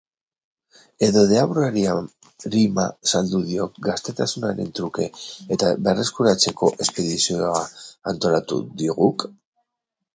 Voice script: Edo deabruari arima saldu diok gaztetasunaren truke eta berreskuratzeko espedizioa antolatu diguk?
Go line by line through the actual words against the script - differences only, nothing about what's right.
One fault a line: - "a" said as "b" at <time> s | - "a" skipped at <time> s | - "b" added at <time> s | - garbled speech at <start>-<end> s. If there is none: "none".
none